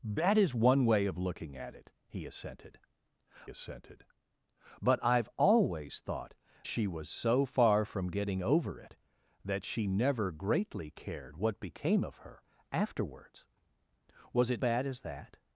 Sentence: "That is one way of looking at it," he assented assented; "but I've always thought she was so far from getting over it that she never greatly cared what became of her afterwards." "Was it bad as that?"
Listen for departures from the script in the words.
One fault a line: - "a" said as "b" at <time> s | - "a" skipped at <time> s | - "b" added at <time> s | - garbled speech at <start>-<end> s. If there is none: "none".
none